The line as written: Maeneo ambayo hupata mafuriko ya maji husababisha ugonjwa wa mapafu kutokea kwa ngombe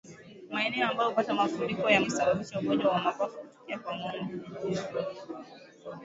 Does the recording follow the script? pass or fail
fail